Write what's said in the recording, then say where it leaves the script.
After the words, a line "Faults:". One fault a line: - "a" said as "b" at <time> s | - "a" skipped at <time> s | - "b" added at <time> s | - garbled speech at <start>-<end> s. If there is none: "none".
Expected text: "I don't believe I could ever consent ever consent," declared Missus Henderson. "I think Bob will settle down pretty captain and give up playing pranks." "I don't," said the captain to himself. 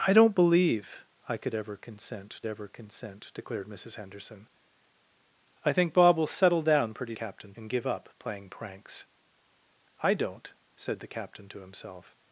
"I don't believe I could ever consent ever consent," declared Missus Henderson. "I think Bob will settle down pretty captain and give up playing pranks." "I don't," said the captain to himself.
Faults:
none